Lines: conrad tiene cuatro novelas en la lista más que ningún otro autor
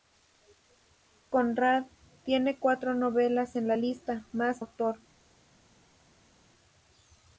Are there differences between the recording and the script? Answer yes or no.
yes